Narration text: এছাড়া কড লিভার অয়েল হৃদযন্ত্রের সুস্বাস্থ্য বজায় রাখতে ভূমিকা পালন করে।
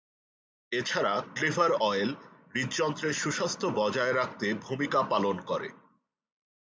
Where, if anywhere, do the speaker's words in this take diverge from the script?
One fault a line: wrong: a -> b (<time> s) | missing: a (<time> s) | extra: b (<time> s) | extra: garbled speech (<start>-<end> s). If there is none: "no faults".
missing: কড (1.1 s)